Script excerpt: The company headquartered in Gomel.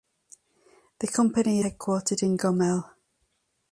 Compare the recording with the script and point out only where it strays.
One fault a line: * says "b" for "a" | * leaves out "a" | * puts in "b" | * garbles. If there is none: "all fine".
all fine